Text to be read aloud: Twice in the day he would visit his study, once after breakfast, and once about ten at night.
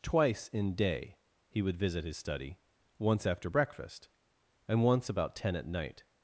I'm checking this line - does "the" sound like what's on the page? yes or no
no